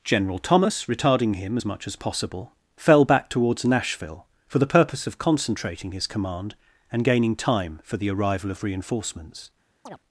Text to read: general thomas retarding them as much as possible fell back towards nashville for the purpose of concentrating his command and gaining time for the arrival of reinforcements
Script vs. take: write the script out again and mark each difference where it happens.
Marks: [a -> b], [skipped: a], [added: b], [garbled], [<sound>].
general thomas retarding [them -> him] as much as possible fell back towards nashville for the purpose of concentrating his command and gaining time for the arrival of reinforcements [chirp]